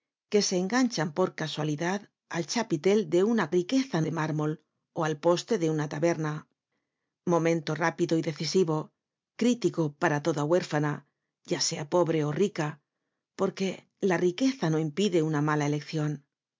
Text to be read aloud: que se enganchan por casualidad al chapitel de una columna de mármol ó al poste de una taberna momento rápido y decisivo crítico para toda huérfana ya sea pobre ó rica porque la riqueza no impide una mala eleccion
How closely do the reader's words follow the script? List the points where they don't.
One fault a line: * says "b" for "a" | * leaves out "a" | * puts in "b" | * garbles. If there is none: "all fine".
* says "riqueza" for "columna"